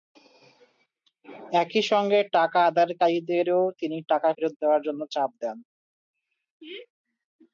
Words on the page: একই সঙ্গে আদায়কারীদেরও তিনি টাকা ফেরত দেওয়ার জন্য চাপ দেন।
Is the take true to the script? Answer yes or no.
no